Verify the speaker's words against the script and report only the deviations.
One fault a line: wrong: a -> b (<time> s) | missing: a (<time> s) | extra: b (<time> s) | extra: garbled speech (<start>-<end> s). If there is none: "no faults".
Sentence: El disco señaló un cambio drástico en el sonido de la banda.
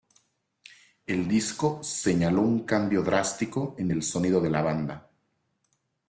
no faults